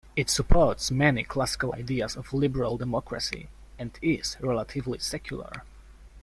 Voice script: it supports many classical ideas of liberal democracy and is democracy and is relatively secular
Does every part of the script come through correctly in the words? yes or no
no